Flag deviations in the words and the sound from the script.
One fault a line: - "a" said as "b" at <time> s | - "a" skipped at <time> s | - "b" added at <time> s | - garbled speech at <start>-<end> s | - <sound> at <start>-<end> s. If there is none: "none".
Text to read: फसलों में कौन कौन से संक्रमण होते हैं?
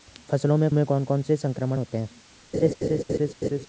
- "में" added at 0.7 s
- laugh at 2.5-3.7 s